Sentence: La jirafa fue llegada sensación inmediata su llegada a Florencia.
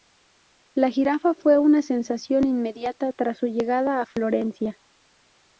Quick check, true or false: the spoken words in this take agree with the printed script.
false